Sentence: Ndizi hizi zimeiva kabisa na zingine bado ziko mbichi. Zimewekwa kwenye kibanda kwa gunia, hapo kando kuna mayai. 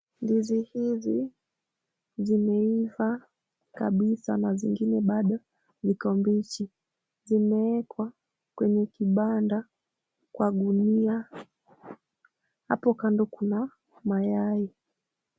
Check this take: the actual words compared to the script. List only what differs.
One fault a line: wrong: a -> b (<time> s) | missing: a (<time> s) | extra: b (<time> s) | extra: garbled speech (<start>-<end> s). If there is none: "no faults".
no faults